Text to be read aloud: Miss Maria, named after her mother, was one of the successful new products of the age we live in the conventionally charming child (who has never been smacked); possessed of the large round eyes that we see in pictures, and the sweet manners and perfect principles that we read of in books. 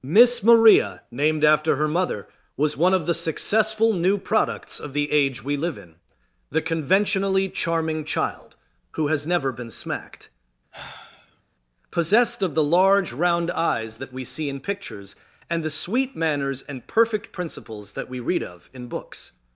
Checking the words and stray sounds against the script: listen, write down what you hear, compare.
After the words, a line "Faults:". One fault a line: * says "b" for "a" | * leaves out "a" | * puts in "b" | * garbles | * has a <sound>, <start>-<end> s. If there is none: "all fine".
Miss Maria, named after her mother, was one of the successful new products of the age we live in the conventionally charming child (who has never been smacked); possessed of the large round eyes that we see in pictures, and the sweet manners and perfect principles that we read of in books.
Faults:
* has a sigh, 10.7-11.4 s